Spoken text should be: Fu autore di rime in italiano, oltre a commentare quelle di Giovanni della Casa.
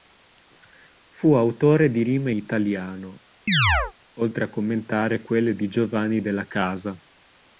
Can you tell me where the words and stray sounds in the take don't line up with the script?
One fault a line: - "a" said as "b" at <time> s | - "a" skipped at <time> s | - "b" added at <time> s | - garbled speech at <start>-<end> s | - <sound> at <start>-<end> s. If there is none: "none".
- "in" skipped at 2.3 s
- chirp at 3.5-3.9 s